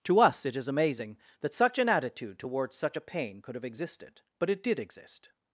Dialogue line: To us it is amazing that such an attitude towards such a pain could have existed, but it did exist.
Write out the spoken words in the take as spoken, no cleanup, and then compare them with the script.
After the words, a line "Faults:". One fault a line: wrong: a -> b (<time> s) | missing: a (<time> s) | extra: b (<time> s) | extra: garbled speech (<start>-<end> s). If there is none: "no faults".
To us it is amazing that such an attitude towards such a pain could have existed, but it did exist.
Faults:
no faults